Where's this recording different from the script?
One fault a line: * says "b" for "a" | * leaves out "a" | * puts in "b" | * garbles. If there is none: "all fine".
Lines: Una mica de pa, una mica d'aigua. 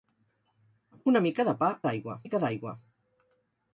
* says "d'aigua" for "una"